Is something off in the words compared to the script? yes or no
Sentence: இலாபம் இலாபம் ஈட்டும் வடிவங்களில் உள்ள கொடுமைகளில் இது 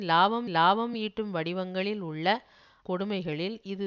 no